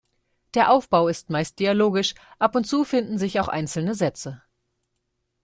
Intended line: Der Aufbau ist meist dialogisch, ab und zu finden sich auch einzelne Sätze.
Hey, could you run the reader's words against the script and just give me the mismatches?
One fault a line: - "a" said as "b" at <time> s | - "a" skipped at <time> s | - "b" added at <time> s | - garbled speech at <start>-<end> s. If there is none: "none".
none